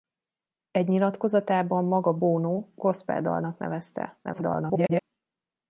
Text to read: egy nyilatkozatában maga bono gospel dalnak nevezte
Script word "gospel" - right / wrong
right